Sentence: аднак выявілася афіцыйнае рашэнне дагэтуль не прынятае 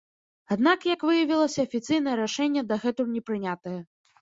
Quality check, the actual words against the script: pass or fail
fail